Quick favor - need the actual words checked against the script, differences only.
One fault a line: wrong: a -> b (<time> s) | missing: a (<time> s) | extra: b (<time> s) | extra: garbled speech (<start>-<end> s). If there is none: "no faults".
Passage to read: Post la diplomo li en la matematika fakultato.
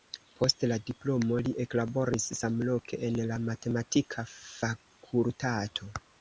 extra: eklaboris samloke (1.6 s)